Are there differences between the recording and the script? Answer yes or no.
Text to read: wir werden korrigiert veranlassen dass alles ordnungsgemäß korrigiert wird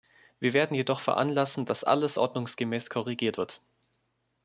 yes